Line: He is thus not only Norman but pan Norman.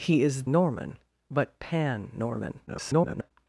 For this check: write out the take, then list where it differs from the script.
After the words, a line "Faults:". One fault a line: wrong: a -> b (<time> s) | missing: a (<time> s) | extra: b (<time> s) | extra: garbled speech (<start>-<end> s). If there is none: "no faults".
He is Norman but pan Norman. [garbled]
Faults:
missing: thus not only (0.5 s)
extra: garbled speech (2.7-3.3 s)